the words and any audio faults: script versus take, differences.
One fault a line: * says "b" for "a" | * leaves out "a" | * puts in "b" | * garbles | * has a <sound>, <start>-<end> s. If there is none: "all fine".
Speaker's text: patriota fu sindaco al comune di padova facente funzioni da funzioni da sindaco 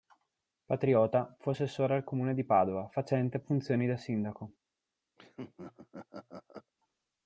* says "assessore" for "sindaco"
* leaves out "funzioni da"
* has a laugh, 5.2-6.7 s